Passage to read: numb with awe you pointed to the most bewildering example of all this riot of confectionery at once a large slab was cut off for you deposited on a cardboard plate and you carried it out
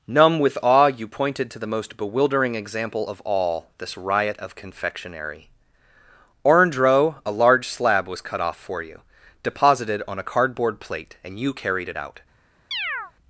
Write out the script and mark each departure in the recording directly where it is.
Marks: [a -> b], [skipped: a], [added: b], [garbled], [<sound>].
numb with awe you pointed to the most bewildering example of all this riot of confectionery [at once -> orange row] a large slab was cut off for you deposited on a cardboard plate and you carried it out [chirp]